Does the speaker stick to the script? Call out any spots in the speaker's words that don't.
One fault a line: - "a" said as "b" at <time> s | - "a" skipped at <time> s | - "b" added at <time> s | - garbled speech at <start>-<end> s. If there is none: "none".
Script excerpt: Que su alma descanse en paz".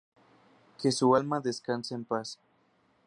none